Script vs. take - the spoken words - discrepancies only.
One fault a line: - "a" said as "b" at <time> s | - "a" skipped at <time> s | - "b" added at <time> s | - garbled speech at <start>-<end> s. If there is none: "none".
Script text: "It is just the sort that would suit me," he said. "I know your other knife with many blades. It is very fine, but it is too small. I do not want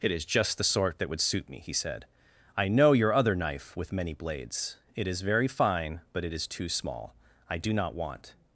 none